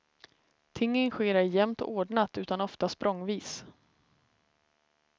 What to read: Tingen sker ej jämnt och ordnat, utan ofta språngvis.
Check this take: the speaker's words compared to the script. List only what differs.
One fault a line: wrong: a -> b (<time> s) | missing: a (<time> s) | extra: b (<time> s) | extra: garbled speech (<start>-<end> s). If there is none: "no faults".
no faults